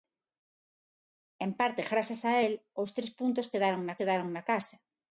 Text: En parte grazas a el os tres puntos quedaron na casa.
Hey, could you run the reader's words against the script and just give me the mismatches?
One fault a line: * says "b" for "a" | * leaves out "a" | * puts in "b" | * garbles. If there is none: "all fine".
* puts in "quedaron na"